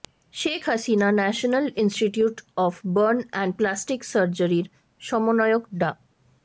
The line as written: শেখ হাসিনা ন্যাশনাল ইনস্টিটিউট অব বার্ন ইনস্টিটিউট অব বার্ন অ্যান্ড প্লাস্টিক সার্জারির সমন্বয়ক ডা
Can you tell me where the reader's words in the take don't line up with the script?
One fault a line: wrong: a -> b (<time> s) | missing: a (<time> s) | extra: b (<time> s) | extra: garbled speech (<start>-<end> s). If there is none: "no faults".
missing: ইনস্টিটিউট অব বার্ন (3.2 s)